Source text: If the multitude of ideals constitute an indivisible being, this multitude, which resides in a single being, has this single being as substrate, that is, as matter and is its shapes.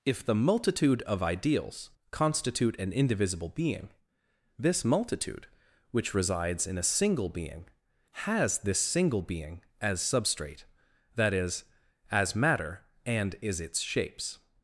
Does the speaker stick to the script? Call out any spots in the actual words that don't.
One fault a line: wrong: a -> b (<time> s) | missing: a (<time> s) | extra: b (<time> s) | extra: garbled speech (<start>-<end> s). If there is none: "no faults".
no faults